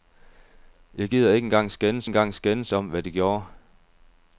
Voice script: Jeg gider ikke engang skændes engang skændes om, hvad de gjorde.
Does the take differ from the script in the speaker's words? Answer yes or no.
no